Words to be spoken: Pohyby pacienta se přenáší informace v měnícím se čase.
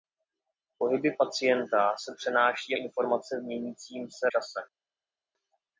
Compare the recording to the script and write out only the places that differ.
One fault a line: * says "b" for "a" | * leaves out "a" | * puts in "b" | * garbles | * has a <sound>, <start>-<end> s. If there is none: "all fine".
all fine